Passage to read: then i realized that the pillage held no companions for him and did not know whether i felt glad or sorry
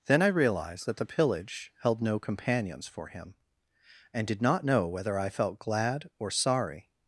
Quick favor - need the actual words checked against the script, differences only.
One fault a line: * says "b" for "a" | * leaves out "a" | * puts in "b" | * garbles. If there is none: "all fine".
all fine